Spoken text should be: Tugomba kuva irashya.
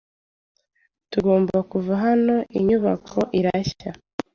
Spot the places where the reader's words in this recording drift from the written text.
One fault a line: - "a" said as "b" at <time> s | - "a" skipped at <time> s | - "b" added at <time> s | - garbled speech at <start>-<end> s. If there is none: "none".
- "hano Inyubako" added at 2.0 s